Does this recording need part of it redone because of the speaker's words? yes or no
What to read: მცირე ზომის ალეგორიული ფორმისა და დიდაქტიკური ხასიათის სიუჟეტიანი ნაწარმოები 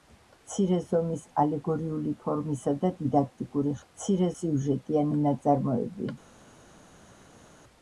yes